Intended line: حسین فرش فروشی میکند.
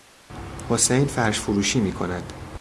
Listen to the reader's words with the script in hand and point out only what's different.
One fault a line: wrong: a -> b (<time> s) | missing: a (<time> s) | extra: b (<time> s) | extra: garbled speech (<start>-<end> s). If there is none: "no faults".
no faults